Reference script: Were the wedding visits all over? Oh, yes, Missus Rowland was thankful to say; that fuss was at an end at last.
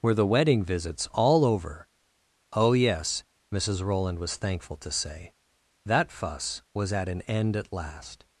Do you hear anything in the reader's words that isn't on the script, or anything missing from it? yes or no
no